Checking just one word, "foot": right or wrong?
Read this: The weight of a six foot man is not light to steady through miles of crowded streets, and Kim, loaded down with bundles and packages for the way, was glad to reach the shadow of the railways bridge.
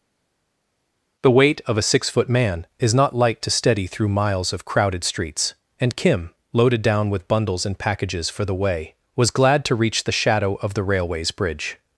right